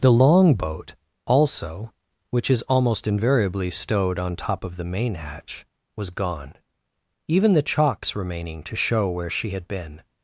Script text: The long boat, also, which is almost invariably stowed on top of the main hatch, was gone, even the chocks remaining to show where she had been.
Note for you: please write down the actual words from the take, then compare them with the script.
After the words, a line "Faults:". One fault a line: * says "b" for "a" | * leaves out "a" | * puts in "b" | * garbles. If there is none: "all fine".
The long boat, also, which is almost invariably stowed on top of the main hatch, was gone, even the chocks remaining to show where she had been.
Faults:
all fine